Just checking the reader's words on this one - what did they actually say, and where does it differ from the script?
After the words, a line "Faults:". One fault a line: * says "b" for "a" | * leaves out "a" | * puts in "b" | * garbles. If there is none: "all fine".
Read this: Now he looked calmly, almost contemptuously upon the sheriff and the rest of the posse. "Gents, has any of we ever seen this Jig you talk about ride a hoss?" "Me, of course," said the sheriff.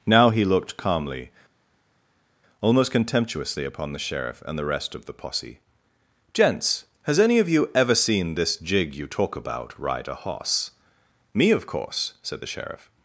Now he looked calmly, almost contemptuously upon the sheriff and the rest of the posse. "Gents, has any of you ever seen this Jig you talk about ride a hoss?" "Me, of course," said the sheriff.
Faults:
* says "you" for "we"